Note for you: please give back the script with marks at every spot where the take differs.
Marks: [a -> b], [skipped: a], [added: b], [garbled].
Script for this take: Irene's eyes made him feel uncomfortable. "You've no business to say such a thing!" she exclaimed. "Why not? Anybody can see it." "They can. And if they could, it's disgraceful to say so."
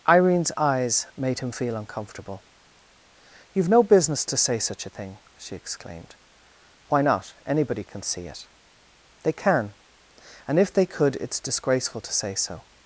Irene's eyes made him feel uncomfortable. "You've no business to say such a thing!" she exclaimed. "Why not? Anybody can see it." "They can. And if they could, it's disgraceful to say so."